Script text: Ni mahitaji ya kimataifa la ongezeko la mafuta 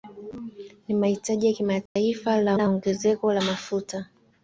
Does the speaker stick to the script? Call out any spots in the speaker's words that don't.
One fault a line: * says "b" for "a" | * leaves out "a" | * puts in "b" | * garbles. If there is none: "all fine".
* puts in "la"